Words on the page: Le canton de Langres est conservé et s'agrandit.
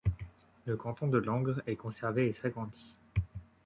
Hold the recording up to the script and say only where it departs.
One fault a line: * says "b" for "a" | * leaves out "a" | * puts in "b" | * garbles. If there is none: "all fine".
all fine